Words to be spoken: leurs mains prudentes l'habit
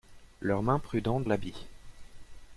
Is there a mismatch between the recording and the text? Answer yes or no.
no